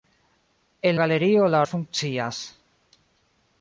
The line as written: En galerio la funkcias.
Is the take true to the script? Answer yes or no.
yes